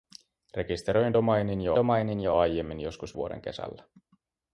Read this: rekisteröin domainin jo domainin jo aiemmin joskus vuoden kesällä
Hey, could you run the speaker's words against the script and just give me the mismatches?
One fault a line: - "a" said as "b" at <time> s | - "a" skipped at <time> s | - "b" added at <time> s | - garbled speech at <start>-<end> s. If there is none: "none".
none